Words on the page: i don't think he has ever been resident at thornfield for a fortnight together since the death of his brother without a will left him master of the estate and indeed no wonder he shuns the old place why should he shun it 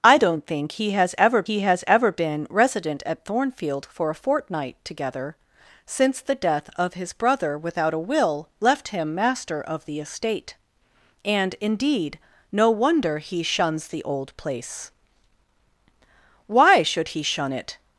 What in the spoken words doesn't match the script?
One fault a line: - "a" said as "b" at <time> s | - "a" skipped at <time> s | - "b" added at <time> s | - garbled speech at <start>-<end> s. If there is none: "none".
- "he has ever" added at 1.4 s